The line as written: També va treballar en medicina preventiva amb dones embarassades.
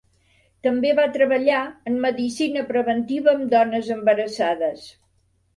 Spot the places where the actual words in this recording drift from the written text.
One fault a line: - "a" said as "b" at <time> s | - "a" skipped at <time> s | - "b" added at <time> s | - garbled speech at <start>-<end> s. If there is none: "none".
none